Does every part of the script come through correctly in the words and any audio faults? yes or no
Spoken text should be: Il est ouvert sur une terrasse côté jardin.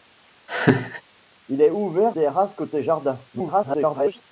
no